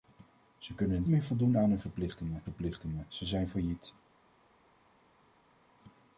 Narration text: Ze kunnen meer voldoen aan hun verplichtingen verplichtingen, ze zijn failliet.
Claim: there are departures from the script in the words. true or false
false